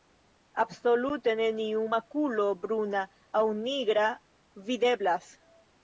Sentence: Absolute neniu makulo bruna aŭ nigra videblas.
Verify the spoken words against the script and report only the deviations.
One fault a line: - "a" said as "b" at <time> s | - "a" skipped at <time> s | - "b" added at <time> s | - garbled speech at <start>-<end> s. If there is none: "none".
none